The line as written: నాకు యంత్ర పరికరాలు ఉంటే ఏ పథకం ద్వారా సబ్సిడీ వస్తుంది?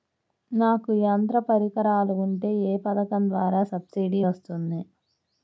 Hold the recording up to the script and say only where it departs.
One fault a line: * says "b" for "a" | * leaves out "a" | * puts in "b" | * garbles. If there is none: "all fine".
all fine